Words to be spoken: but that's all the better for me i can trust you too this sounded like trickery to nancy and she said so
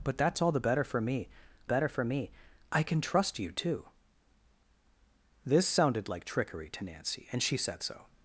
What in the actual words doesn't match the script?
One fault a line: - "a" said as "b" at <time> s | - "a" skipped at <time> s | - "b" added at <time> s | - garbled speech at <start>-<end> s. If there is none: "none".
- "better for me" added at 1.6 s